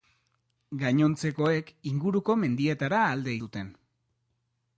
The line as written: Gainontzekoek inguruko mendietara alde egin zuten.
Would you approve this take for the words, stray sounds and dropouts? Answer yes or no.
no